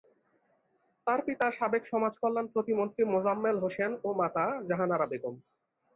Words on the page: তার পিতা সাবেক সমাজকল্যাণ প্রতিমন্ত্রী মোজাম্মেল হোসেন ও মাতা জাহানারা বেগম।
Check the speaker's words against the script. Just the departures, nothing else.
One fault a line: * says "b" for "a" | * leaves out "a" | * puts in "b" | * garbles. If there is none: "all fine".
all fine